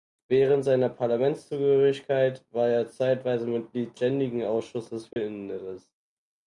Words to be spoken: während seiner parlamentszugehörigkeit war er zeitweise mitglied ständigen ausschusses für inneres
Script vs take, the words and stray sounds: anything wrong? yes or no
yes